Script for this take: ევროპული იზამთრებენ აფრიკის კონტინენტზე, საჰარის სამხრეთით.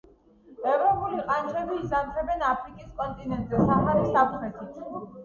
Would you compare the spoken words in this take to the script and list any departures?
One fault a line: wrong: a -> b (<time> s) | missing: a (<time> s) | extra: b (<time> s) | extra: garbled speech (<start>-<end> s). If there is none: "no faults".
extra: ყანჩები (1.2 s)